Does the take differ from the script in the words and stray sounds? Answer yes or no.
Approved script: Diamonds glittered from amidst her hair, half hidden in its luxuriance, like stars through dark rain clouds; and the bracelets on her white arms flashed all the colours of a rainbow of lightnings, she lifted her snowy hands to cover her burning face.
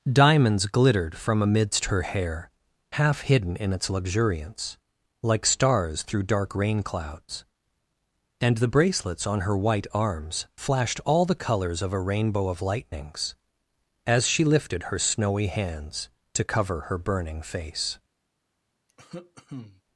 yes